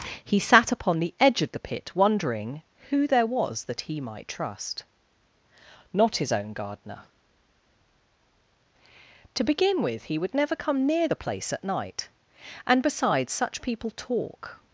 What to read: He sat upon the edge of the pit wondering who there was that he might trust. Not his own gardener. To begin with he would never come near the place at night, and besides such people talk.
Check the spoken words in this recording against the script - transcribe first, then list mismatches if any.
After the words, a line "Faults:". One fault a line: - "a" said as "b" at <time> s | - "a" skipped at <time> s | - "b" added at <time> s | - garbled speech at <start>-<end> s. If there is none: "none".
He sat upon the edge of the pit wondering who there was that he might trust. Not his own gardener. To begin with he would never come near the place at night, and besides such people talk.
Faults:
none